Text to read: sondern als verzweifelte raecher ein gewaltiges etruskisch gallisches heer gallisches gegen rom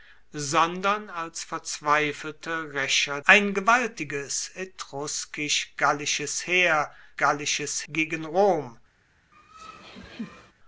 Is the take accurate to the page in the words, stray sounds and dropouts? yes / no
no